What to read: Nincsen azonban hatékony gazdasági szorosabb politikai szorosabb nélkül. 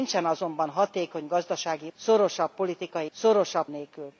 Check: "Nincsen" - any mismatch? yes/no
no